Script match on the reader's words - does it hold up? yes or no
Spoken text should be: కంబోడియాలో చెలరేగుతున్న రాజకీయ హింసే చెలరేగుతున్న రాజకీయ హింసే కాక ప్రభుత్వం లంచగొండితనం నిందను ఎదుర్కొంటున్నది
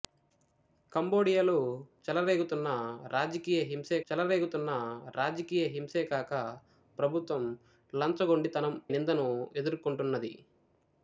yes